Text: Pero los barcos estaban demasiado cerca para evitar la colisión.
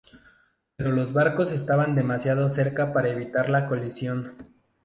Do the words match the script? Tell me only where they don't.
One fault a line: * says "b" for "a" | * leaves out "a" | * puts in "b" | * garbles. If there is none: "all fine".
all fine